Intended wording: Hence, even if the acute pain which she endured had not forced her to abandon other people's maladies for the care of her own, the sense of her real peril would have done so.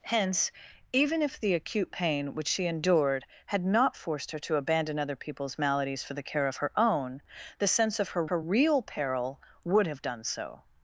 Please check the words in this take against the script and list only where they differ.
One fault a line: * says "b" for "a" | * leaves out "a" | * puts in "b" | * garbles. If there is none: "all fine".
* puts in "her"